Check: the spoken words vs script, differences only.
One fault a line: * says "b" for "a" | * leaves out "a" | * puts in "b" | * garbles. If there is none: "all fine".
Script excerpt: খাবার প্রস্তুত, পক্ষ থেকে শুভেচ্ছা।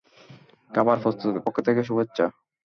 all fine